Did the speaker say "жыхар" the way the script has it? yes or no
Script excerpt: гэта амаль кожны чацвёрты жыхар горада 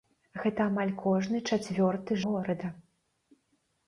no